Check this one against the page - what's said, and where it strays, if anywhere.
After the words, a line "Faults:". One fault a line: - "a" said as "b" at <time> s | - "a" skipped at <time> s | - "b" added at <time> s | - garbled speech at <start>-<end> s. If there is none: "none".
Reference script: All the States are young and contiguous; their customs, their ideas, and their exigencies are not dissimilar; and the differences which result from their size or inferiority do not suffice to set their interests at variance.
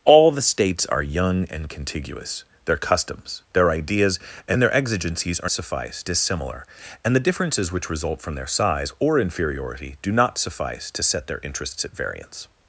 All the States are young and contiguous; their customs, their ideas, and their exigencies are suffice dissimilar; and the differences which result from their size or inferiority do not suffice to set their interests at variance.
Faults:
- "not" said as "suffice" at 5.5 s